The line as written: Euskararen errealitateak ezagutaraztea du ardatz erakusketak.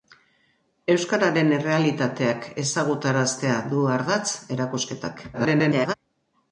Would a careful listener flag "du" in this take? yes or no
no